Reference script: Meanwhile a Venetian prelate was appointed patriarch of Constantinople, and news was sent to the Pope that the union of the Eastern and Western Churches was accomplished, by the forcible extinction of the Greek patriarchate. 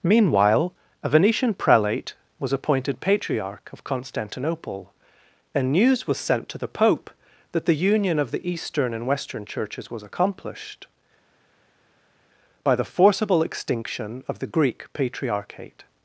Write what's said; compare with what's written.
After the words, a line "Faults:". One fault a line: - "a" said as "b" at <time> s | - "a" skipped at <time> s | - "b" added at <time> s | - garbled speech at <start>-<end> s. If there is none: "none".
Meanwhile a Venetian prelate was appointed patriarch of Constantinople, and news was sent to the Pope that the union of the Eastern and Western Churches was accomplished, by the forcible extinction of the Greek patriarchate.
Faults:
none